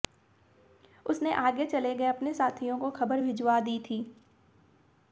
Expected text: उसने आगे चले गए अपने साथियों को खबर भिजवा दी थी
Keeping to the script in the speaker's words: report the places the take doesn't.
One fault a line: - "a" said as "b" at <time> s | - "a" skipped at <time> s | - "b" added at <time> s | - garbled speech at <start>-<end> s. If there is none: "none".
none